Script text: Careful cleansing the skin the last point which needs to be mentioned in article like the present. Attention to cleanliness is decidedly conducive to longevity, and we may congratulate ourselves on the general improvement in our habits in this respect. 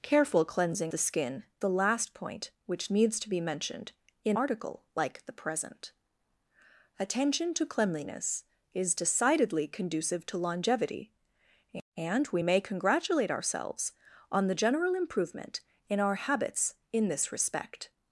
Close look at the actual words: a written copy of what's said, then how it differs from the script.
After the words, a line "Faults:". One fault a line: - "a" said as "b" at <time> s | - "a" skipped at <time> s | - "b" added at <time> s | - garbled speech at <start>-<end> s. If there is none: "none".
Careful cleansing the skin the last point which needs to be mentioned in article like the present. Attention to cleanliness is decidedly conducive to longevity, and we may congratulate ourselves on the general improvement in our habits in this respect.
Faults:
none